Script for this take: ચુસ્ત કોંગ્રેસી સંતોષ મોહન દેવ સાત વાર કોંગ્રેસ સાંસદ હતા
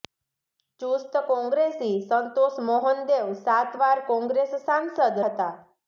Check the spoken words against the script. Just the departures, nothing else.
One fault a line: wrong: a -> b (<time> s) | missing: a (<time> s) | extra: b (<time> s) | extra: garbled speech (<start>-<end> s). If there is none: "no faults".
no faults